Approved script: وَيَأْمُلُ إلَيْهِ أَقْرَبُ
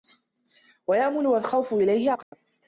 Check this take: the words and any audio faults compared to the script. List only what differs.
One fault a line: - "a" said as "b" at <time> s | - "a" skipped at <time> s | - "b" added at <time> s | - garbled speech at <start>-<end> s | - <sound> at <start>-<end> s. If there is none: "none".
- "وَالْخَوْفُ" added at 1.3 s
- dropout at 2.2-2.3 s